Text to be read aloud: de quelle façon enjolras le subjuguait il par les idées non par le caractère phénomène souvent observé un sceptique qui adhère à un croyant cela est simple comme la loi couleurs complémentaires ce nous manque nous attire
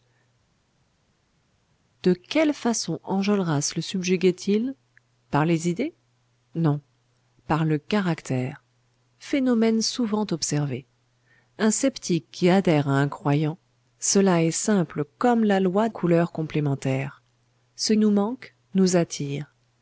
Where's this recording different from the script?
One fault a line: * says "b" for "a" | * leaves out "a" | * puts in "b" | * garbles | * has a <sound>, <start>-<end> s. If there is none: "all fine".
all fine